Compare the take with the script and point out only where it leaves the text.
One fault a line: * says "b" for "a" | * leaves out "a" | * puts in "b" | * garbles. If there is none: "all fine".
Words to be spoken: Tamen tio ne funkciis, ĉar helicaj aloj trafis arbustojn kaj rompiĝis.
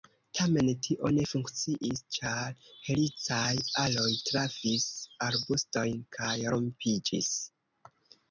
all fine